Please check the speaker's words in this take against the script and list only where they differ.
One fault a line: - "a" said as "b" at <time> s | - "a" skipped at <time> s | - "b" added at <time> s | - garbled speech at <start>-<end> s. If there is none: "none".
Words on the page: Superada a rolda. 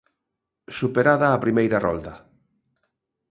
- "primeira" added at 1.4 s